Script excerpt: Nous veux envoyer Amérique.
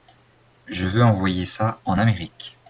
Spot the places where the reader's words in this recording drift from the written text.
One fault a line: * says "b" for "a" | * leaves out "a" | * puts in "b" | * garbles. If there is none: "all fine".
* says "Je" for "Nous"
* puts in "ça en"